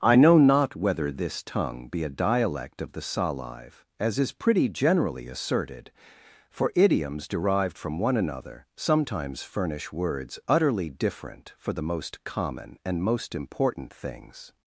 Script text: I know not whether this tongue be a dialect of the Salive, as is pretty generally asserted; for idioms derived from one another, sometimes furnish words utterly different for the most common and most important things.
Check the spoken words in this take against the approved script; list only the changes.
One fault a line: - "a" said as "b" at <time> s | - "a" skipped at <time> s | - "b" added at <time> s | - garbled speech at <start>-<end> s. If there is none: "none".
none